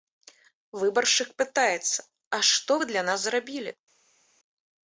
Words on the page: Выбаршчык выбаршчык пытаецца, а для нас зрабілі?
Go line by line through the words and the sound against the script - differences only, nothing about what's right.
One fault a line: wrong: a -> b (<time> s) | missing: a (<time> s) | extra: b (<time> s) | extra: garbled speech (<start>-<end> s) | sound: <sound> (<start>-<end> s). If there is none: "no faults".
missing: выбаршчык (1.3 s)
extra: што вы (2.6 s)